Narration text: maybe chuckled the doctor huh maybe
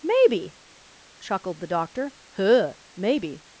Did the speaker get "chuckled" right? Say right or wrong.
right